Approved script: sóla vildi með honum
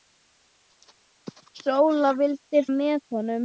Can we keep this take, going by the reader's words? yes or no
yes